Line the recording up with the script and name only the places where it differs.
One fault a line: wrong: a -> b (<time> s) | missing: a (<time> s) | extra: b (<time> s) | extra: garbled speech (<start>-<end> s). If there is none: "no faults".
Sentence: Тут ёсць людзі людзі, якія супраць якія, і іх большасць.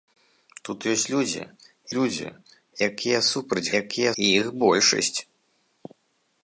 no faults